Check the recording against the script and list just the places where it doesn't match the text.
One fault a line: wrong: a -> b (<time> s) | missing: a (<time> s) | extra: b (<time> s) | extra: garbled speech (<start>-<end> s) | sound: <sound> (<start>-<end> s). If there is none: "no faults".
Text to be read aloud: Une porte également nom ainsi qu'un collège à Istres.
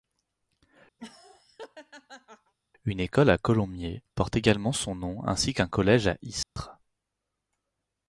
sound: laugh (1.0-2.5 s)
extra: école à Colomiers (3.0 s)
extra: son (4.7 s)
sound: dropout (6.4-6.6 s)